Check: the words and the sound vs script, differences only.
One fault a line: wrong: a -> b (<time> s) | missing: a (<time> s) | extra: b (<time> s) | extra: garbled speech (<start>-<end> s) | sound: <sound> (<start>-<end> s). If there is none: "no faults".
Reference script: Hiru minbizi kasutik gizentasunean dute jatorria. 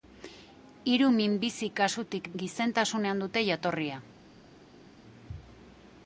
no faults